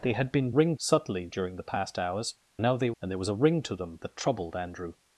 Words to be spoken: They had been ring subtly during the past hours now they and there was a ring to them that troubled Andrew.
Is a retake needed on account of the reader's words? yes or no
no